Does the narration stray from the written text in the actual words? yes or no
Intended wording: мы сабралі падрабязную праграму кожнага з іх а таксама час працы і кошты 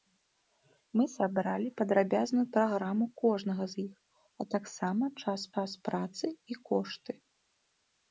yes